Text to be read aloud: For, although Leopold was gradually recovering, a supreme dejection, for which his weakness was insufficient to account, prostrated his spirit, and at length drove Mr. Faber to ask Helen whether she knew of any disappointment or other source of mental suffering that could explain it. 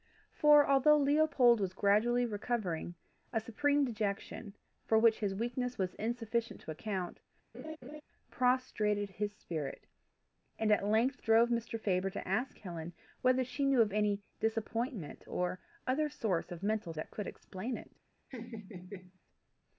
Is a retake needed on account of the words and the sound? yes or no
yes